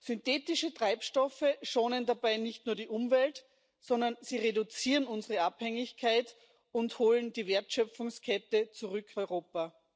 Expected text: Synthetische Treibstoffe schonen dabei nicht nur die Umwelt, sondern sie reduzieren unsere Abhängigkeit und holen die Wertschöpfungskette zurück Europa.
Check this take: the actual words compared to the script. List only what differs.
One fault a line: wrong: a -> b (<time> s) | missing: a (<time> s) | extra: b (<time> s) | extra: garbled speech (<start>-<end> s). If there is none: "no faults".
no faults